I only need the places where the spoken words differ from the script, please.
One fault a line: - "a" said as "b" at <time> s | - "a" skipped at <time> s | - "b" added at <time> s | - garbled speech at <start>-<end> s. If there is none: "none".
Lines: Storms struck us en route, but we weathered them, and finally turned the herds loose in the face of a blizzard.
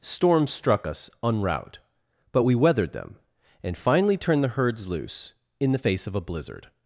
none